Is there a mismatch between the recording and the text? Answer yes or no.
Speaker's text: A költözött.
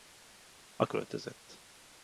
no